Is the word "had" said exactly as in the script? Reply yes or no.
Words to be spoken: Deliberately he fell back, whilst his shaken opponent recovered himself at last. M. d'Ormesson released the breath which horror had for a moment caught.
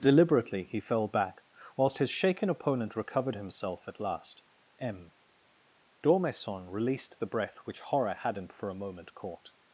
no